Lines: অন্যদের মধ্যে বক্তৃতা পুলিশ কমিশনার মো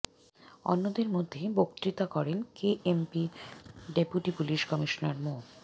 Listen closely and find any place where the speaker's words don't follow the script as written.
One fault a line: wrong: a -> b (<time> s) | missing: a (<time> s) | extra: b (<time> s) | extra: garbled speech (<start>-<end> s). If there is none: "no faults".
extra: করেন কেএমপির ডেপুটি (2.1 s)